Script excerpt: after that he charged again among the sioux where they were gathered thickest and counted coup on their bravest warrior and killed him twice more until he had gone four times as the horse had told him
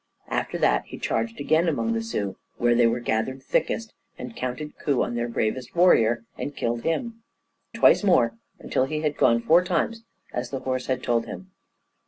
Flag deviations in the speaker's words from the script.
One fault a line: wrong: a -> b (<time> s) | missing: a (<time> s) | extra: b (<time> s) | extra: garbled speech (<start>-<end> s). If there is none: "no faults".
no faults